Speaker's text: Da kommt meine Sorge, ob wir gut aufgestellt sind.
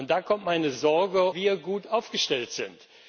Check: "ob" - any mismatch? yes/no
yes